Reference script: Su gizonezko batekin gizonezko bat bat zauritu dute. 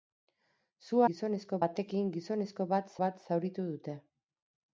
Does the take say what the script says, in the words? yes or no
yes